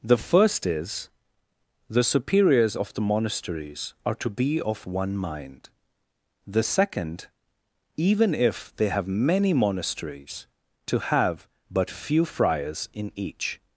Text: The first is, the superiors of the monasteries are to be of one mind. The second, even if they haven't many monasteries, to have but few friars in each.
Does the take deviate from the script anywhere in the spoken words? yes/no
yes